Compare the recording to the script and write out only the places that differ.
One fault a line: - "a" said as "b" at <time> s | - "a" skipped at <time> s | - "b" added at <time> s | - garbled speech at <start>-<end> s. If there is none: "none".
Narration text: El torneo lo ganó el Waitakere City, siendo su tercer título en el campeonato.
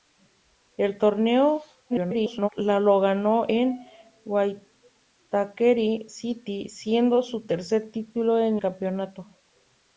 - garbled speech at 1.9-2.5 s
- "el" skipped at 8.6 s